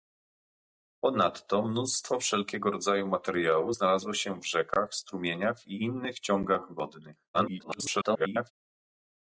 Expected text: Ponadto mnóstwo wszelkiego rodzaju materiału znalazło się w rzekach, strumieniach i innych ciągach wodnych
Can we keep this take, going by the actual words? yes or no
no